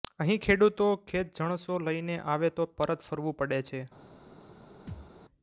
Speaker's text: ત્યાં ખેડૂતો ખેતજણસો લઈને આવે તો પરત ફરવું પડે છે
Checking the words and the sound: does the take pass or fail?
fail